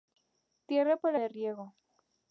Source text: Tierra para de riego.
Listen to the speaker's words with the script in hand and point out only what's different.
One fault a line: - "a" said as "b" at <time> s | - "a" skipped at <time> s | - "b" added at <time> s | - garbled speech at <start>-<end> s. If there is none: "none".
none